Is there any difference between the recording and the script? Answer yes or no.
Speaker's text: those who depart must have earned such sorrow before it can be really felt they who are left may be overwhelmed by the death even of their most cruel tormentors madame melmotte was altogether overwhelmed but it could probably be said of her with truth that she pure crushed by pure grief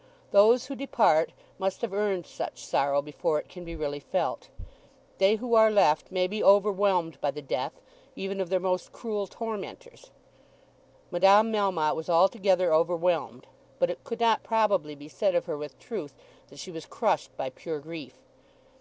yes